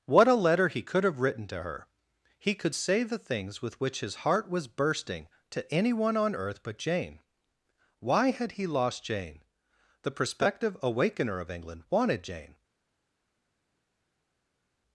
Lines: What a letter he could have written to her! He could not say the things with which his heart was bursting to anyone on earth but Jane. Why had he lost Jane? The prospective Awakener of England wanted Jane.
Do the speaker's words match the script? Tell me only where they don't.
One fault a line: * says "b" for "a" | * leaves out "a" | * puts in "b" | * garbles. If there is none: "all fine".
* leaves out "not"